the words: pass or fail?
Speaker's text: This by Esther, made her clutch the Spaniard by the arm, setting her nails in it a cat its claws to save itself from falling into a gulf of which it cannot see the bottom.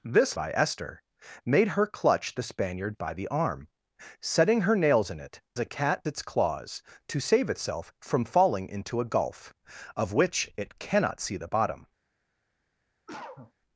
pass